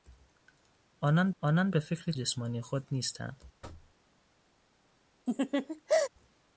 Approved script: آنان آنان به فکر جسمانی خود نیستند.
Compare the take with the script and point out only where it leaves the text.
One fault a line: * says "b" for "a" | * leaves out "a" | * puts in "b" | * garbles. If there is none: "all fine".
all fine